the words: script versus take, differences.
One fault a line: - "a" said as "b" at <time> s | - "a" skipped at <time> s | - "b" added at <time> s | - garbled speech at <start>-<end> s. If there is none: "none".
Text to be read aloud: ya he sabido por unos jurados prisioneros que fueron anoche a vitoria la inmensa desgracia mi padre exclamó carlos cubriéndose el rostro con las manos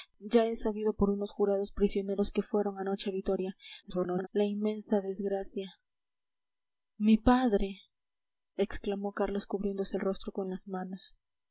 - garbled speech at 3.8-4.3 s